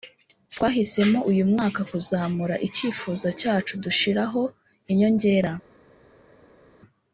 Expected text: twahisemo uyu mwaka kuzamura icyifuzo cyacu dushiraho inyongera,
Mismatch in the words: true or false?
false